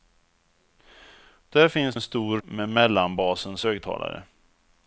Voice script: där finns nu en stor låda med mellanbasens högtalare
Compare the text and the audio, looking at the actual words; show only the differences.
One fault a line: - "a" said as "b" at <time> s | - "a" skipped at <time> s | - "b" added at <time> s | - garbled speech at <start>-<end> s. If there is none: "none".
- "nu" skipped at 2.0 s
- "låda" skipped at 2.4 s